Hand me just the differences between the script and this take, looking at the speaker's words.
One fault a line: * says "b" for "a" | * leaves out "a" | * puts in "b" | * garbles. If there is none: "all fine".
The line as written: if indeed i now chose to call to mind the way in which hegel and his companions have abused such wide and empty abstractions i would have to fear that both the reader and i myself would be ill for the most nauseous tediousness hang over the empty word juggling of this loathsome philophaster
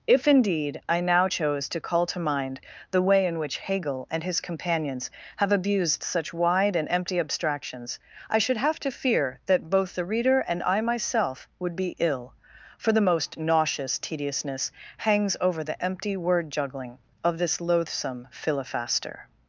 * says "should" for "would"
* says "hangs" for "hang"